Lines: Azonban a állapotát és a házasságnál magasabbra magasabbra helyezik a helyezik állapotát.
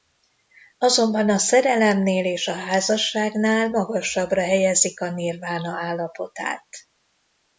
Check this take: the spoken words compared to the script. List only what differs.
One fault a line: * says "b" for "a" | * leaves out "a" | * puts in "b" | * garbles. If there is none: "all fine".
* says "szerelemnél" for "állapotát"
* leaves out "magasabbra"
* says "nirvána" for "helyezik"